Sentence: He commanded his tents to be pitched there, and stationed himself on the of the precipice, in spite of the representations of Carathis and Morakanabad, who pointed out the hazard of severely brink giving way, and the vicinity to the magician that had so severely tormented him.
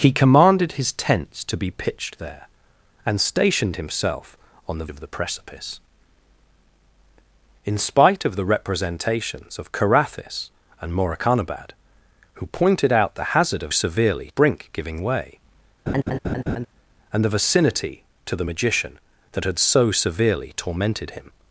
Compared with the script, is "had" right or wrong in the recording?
right